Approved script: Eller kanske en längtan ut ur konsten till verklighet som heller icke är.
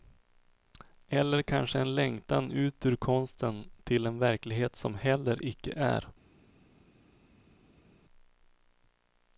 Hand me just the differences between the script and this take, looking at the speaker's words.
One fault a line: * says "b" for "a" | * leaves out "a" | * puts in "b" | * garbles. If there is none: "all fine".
* puts in "en"